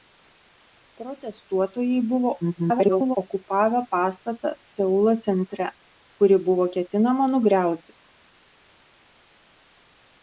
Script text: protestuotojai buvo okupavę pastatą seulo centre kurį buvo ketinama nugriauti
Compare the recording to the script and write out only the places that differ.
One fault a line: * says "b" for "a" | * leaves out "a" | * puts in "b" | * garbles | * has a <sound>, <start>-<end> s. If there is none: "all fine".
* garbles